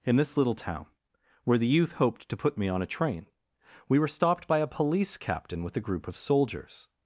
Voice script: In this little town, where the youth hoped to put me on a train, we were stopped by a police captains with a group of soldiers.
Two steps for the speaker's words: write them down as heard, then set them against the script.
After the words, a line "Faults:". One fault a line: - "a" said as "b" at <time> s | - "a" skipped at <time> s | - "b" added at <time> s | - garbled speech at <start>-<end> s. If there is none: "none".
In this little town, where the youth hoped to put me on a train, we were stopped by a police captain with a group of soldiers.
Faults:
- "captains" said as "captain" at 5.2 s